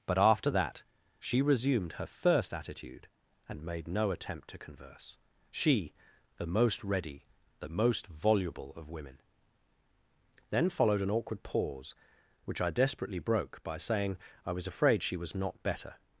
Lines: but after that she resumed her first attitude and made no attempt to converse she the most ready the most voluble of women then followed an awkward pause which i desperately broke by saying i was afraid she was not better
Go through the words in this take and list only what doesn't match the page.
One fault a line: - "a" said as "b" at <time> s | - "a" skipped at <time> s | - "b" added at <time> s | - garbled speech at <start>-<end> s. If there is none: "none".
none